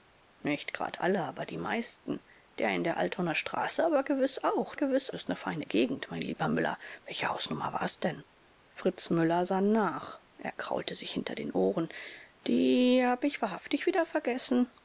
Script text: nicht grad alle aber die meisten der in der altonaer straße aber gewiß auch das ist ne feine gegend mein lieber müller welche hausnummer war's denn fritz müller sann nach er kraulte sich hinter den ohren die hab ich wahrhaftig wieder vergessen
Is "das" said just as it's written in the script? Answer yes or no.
no